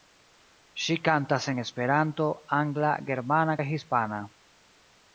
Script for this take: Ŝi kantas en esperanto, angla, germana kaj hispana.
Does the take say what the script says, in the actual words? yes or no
yes